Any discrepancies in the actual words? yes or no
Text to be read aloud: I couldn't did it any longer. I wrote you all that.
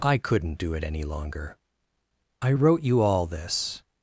yes